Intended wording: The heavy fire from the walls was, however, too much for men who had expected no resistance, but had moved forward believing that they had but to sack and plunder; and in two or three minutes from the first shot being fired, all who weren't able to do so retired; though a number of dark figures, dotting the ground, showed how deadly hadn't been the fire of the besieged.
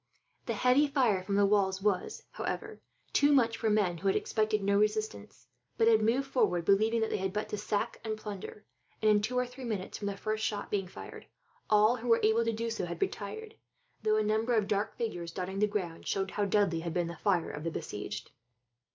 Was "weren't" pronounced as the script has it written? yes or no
no